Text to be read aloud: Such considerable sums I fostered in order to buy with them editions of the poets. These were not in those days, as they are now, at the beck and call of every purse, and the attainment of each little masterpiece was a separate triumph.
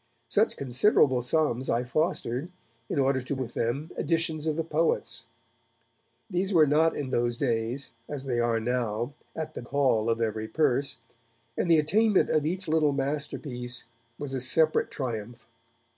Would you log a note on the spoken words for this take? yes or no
yes